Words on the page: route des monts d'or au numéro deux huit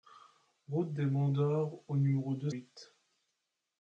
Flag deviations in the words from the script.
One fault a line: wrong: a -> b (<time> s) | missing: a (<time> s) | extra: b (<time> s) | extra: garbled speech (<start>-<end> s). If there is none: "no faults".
no faults